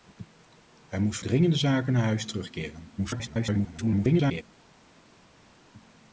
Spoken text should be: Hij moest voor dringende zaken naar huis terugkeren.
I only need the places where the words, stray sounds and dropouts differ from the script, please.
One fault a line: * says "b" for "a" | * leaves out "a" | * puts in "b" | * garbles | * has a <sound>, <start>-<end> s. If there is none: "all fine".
* leaves out "voor"
* garbles